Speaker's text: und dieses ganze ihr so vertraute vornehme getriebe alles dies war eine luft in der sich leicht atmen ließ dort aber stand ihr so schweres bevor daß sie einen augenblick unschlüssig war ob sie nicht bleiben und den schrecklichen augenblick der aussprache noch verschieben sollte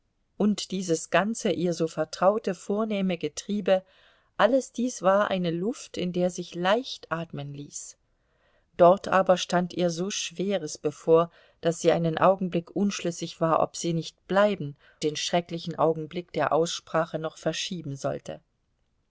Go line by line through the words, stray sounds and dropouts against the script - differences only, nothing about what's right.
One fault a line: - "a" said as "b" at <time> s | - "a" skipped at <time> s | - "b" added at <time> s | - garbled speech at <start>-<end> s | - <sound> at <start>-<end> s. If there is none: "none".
- "und" skipped at 14.8 s